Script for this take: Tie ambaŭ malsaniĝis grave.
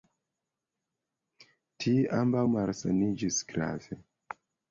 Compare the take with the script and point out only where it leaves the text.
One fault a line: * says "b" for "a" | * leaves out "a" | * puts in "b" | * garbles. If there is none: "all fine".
all fine